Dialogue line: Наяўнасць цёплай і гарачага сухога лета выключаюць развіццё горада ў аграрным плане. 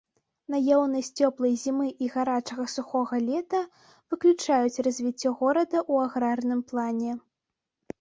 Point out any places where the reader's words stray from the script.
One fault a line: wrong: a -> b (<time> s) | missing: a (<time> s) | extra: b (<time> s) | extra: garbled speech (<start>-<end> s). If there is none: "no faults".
extra: зімы (1.6 s)